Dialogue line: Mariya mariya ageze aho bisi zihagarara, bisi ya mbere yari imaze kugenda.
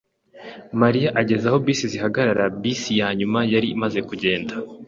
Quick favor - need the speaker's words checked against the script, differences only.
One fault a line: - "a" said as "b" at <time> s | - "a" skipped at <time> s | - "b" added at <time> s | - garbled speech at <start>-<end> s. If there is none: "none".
- "mariya" skipped at 1.1 s
- "mbere" said as "nyuma" at 3.2 s